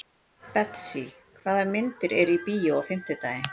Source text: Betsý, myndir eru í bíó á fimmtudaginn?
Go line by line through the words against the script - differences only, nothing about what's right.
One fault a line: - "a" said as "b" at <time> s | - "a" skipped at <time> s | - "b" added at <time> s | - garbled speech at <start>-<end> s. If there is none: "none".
- "hvaða" added at 1.4 s